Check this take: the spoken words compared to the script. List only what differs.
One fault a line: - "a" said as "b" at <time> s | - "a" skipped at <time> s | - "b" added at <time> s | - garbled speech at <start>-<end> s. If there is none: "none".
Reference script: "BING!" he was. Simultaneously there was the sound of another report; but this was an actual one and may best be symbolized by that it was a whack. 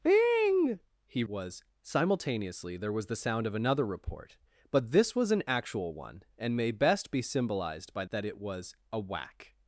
none